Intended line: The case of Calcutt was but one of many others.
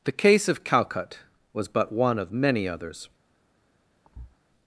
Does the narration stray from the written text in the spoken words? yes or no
no